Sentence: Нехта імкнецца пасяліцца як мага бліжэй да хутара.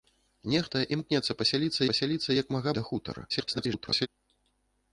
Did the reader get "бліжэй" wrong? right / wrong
wrong